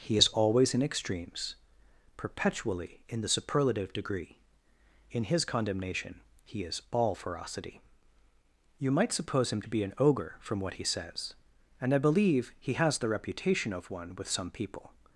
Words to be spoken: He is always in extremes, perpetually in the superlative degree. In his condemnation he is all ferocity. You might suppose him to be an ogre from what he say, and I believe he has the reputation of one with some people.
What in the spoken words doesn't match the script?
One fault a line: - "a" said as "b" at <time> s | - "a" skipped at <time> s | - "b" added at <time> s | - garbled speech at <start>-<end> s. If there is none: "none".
- "say" said as "says" at 10.8 s